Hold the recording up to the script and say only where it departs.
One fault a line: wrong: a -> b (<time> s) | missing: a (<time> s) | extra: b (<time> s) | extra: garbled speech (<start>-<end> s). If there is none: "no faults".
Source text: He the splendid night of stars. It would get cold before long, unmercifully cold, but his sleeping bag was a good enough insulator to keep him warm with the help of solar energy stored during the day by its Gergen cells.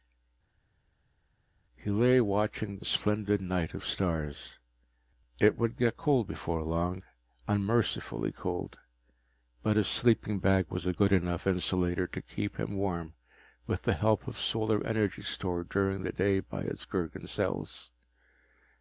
extra: lay watching (1.9 s)